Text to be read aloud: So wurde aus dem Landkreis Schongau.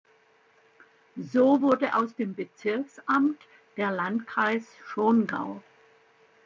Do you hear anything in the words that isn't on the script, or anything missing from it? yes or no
yes